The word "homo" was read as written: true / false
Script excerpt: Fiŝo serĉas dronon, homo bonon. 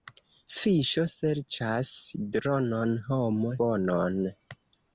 true